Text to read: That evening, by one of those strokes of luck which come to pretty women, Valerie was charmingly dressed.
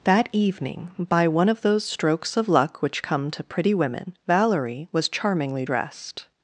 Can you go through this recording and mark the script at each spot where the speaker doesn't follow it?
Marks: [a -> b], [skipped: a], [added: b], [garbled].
That evening, by one of those strokes of luck which come to pretty women, Valerie was charmingly dressed.